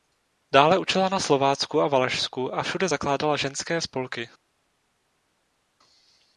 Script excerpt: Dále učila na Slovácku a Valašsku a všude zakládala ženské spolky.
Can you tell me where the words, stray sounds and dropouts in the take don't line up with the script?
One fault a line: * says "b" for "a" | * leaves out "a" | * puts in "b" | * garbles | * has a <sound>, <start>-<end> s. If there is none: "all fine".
all fine